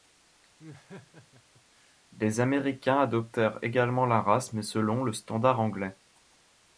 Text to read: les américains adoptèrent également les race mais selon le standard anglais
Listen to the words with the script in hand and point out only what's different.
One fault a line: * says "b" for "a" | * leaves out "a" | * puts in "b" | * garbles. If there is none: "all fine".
* says "la" for "les"